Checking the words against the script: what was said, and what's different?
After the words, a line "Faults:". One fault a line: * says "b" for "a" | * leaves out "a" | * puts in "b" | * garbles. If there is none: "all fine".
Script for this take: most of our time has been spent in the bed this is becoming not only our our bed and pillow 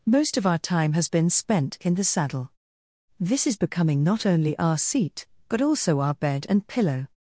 most of our time has been spent in the saddle this is becoming not only our seat but also our bed and pillow
Faults:
* says "saddle" for "bed"
* puts in "seat but also"